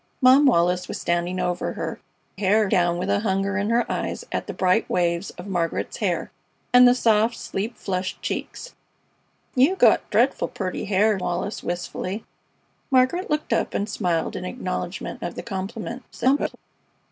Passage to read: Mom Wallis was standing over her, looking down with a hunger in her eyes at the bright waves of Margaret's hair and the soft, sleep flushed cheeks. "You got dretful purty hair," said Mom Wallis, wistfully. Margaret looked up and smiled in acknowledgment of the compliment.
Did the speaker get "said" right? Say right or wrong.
wrong